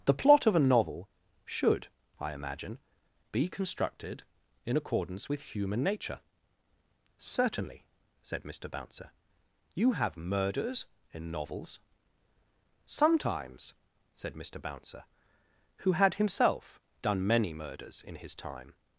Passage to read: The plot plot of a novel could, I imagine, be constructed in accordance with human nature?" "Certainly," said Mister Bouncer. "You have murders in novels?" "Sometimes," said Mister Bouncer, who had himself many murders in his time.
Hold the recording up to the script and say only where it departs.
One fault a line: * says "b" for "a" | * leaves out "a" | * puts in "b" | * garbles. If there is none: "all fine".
* leaves out "plot"
* says "should" for "could"
* puts in "done"